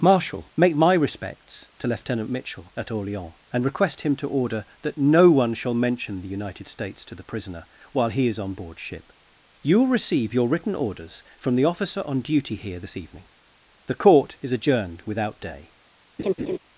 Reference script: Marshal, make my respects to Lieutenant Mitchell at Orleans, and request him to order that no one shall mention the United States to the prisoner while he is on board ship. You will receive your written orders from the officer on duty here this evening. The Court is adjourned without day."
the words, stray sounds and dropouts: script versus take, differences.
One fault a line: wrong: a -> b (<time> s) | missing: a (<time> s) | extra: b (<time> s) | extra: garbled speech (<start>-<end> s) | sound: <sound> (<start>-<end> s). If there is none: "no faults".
sound: laugh (16.2-16.6 s)